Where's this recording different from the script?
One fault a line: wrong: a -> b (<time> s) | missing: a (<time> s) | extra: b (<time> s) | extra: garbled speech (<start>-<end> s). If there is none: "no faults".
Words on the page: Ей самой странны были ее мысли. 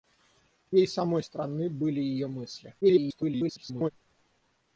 extra: garbled speech (2.8-3.9 s)